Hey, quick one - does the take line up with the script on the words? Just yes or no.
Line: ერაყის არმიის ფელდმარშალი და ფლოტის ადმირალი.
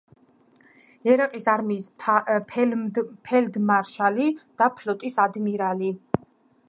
yes